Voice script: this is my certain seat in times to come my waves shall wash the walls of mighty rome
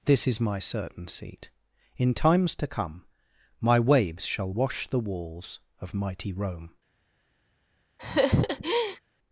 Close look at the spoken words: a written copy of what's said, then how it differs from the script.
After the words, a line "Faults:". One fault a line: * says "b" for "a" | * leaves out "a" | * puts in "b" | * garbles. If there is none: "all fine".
this is my certain seat in times to come my waves shall wash the walls of mighty rome
Faults:
all fine